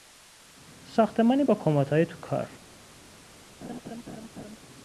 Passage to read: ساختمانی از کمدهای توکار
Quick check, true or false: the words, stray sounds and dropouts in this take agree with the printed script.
false